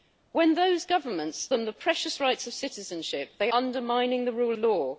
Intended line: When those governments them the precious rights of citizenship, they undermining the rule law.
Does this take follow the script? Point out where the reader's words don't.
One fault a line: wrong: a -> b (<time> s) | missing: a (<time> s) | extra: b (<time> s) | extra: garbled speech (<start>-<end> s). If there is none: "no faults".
no faults